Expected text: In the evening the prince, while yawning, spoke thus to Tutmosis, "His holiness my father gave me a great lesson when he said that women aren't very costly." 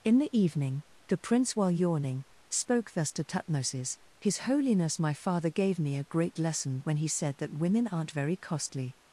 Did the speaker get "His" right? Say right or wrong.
right